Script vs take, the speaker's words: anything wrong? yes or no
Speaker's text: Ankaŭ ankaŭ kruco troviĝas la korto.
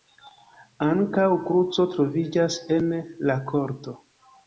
yes